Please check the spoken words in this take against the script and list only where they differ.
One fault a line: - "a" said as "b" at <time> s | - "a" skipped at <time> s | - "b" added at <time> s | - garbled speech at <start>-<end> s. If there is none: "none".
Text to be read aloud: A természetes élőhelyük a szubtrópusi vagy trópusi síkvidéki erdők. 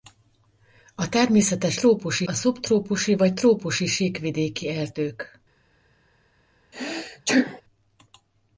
- "élőhelyük" said as "trópusi" at 1.7 s